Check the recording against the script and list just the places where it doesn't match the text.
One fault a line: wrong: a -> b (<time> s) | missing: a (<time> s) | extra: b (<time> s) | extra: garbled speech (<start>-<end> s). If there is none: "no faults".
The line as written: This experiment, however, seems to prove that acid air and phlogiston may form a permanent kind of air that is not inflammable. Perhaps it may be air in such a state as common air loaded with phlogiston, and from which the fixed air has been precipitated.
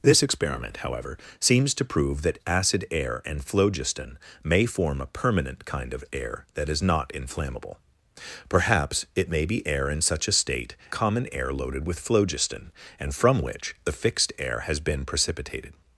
missing: as (10.8 s)